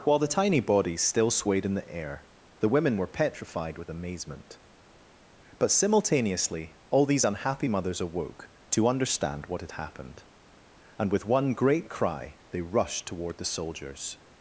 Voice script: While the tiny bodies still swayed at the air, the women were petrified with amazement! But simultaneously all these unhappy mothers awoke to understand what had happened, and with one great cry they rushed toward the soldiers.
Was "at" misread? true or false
true